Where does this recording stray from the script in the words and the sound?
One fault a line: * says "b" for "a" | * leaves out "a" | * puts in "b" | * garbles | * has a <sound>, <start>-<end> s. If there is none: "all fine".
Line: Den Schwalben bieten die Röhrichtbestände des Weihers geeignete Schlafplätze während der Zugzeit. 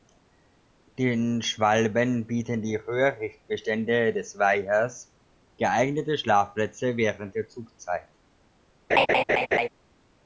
* has a laugh, 8.9-9.7 s